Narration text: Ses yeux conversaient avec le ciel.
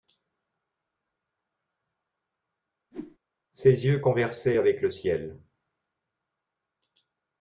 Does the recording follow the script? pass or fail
pass